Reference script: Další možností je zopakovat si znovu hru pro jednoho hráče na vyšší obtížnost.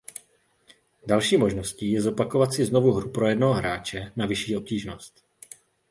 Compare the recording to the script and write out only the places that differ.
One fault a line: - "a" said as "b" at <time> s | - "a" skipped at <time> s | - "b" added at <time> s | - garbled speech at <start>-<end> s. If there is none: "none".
none